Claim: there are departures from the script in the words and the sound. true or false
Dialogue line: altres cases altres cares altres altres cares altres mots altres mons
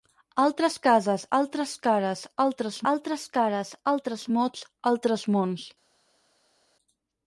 false